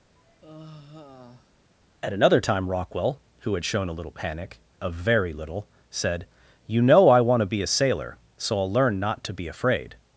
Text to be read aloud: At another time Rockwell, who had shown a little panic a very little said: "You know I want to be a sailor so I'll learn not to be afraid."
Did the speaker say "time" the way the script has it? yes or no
yes